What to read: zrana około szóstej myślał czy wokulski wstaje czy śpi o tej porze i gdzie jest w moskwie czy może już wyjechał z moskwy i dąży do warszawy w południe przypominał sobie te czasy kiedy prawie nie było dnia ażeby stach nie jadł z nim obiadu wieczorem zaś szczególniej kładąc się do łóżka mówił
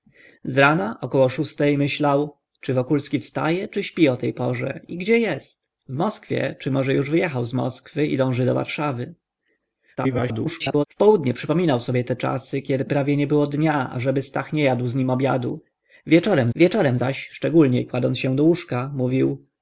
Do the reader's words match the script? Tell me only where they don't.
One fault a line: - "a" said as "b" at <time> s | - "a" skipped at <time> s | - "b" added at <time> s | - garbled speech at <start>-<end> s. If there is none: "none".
- garbled speech at 10.0-10.9 s
- "wieczorem" added at 16.5 s